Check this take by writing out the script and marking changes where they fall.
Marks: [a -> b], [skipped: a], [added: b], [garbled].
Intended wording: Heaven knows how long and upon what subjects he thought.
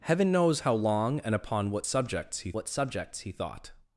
Heaven knows how long and upon what subjects he [added: what subjects he] thought.